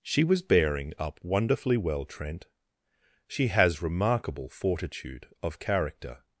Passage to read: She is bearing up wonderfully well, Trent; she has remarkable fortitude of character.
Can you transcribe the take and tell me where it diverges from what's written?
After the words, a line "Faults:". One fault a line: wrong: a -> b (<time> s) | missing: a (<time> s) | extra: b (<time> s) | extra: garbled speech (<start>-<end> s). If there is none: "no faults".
She was bearing up wonderfully well, Trent; she has remarkable fortitude of character.
Faults:
wrong: is -> was (0.2 s)